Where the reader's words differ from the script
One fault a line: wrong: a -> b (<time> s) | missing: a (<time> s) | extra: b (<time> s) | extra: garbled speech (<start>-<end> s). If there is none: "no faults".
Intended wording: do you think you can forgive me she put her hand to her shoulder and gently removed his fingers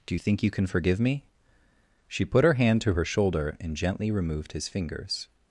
no faults